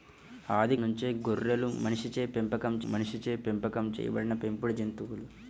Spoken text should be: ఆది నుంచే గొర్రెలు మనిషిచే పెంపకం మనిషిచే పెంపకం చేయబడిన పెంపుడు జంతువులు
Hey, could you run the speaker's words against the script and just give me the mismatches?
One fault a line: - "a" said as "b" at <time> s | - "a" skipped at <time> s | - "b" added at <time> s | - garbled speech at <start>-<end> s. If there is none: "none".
none